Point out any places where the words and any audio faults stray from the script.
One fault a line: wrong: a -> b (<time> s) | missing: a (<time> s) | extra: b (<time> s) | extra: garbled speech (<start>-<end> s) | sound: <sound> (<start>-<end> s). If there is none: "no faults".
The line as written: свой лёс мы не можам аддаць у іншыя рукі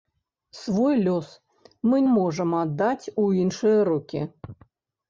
missing: не (2.0 s)